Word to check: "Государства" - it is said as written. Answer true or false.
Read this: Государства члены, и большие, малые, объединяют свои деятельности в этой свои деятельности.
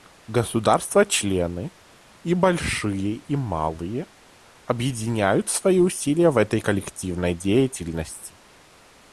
true